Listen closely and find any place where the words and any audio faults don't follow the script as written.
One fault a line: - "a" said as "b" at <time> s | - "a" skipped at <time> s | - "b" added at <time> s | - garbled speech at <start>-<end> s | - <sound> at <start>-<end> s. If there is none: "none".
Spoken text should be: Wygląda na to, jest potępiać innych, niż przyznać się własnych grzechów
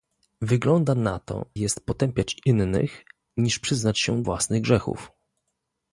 none